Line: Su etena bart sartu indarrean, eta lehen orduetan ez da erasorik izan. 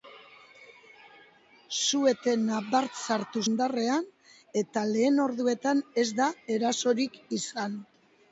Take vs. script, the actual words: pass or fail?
pass